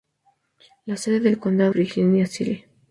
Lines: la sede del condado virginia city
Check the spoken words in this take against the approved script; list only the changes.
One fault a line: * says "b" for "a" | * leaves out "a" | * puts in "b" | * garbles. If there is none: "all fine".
all fine